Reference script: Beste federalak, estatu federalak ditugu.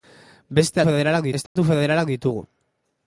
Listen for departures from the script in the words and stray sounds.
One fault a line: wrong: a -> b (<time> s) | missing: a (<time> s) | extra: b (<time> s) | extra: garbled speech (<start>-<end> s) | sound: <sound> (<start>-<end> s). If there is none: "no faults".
sound: dropout (1.5-1.6 s)